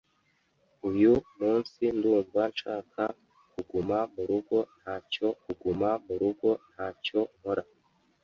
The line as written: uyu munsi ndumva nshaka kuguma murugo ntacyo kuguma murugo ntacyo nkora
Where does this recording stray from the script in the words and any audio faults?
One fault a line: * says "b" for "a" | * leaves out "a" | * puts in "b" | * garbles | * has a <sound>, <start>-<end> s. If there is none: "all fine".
all fine